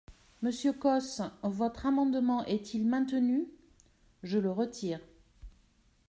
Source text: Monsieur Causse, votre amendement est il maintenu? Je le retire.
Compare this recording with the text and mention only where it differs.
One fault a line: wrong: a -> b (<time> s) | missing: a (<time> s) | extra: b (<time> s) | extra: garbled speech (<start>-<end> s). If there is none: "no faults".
no faults